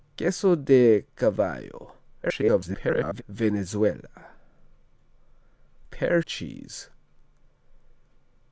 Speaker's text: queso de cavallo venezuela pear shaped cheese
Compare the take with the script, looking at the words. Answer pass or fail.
fail